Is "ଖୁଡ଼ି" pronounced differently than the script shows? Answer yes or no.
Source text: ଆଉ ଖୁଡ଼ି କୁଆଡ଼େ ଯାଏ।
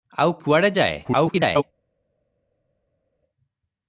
yes